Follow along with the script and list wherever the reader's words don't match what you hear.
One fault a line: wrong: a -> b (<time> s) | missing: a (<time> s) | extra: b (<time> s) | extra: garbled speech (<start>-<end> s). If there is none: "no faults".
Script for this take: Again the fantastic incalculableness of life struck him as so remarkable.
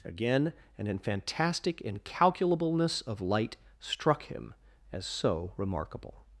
wrong: the -> an (0.8 s)
wrong: life -> light (3.2 s)